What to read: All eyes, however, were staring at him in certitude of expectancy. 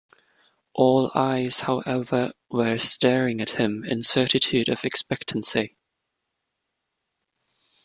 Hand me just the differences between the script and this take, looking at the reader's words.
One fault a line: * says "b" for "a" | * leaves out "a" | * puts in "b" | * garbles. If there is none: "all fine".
all fine